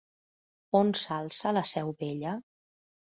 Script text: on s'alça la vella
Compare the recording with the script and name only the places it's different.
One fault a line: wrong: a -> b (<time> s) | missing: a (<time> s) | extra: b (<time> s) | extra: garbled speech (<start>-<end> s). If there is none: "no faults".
extra: seu (1.7 s)